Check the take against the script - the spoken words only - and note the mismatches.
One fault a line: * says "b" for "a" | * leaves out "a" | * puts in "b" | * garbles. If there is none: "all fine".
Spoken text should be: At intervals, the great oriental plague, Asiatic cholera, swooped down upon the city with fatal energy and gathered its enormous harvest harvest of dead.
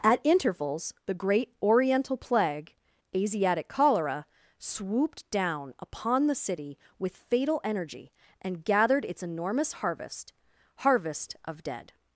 all fine